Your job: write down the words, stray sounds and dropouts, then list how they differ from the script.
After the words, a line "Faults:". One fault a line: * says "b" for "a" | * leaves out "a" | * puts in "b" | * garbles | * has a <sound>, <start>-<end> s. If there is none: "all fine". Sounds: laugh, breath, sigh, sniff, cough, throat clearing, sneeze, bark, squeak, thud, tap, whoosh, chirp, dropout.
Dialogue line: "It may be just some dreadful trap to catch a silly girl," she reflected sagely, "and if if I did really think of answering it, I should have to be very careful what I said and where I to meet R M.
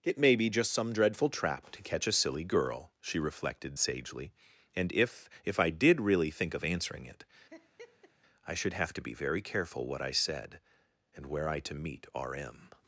"It may be just some dreadful trap to catch a silly girl," she reflected sagely, "and if if I did really think of answering it, I should have to be very careful what I said and where I to meet R M.
Faults:
* has a laugh, 7.5-8.1 s